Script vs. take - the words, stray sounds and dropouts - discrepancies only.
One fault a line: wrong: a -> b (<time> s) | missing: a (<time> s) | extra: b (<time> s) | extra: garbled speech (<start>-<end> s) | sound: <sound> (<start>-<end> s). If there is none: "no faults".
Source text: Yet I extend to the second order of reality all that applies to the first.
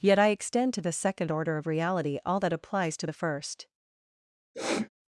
sound: sniff (4.5-4.9 s)